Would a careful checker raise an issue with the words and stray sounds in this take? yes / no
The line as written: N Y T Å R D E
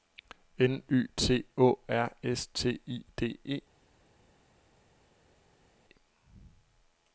yes